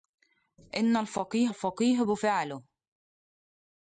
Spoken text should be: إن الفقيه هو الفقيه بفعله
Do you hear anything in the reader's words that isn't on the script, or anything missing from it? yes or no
yes